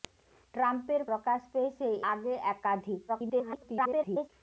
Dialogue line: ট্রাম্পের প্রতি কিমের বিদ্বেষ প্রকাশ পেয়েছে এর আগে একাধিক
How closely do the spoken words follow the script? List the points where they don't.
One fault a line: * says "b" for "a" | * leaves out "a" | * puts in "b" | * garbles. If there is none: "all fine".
* leaves out "প্রতি কিমের বিদ্বেষ"
* leaves out "এর"
* garbles